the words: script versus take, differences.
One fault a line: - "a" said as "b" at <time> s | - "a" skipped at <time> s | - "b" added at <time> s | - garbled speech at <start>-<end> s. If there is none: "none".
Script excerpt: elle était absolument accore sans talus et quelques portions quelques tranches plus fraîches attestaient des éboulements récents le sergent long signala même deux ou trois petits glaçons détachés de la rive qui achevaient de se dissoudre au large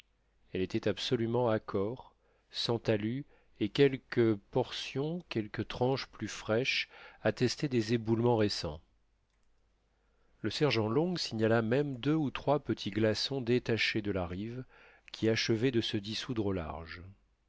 none